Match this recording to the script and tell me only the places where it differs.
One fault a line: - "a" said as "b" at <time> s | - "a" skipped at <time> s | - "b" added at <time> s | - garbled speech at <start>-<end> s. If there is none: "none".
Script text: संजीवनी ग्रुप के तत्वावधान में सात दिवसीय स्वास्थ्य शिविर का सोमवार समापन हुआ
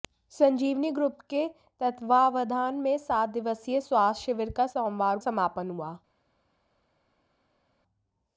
none